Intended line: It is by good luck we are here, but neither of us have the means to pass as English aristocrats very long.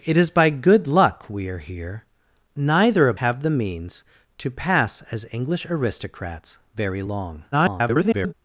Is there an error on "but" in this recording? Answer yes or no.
yes